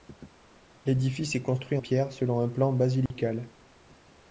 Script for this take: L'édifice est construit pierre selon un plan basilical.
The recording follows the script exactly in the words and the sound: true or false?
false